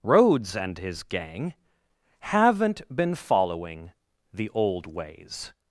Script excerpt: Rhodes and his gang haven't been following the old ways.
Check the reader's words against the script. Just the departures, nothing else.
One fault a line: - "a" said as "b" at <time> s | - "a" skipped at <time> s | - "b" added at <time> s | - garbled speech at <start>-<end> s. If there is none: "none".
none